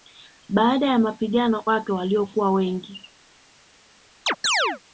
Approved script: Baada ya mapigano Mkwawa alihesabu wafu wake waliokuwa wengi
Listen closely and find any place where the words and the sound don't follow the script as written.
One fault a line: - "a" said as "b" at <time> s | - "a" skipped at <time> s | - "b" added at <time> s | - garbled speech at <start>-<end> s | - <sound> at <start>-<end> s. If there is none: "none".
- "Mkwawa alihesabu wafu" skipped at 1.6 s
- chirp at 4.3-4.8 s